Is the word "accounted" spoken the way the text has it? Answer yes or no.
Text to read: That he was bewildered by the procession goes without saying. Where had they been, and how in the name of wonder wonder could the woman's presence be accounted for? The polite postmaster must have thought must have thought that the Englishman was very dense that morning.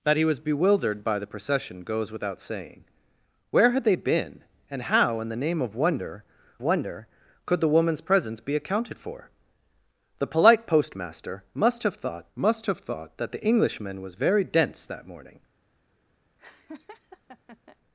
yes